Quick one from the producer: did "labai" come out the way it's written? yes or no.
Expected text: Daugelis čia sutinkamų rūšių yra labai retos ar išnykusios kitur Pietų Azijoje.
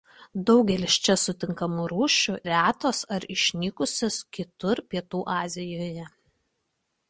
no